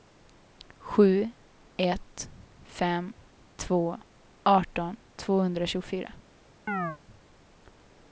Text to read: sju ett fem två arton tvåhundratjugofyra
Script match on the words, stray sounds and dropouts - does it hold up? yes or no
no